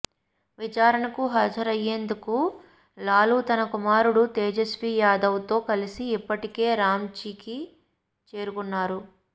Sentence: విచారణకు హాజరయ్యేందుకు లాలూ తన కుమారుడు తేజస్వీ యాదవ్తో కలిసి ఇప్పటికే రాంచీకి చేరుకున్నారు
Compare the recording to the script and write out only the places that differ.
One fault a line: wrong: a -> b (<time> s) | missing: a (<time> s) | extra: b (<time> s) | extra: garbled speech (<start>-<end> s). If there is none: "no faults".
no faults